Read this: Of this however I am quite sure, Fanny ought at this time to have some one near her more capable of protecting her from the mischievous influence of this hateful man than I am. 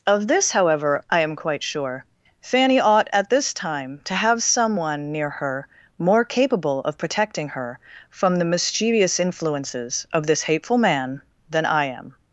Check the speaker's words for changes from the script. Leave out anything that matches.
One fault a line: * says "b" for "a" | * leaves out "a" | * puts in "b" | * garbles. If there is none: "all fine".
* says "influences" for "influence"